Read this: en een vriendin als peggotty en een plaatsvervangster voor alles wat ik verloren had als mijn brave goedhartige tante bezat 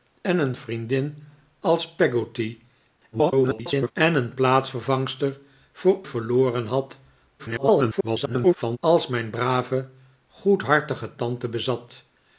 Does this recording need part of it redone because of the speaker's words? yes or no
yes